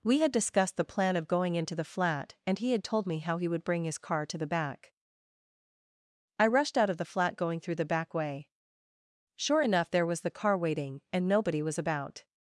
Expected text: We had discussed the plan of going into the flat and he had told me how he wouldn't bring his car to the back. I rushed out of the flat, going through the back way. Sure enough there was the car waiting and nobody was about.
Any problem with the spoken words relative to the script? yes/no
yes